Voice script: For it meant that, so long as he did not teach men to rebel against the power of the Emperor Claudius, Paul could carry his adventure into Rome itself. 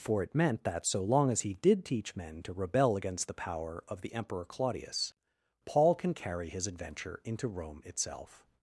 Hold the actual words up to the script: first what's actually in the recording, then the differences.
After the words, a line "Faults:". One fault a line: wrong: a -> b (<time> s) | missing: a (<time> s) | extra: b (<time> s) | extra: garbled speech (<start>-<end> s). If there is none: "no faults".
For it meant that, so long as he did teach men to rebel against the power of the Emperor Claudius, Paul can carry his adventure into Rome itself.
Faults:
missing: not (1.9 s)
wrong: could -> can (5.9 s)